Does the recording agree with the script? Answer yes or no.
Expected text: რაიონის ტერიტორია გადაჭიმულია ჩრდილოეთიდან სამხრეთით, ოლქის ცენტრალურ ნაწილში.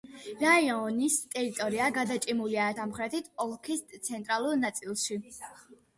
no